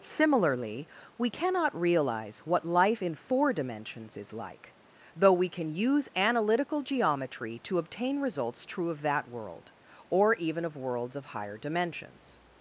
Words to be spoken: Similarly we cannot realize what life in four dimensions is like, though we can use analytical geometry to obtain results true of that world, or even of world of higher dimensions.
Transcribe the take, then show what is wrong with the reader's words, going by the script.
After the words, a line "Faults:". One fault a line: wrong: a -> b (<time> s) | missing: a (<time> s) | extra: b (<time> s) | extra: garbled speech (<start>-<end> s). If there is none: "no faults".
Similarly we cannot realize what life in four dimensions is like, though we can use analytical geometry to obtain results true of that world, or even of worlds of higher dimensions.
Faults:
wrong: world -> worlds (10.8 s)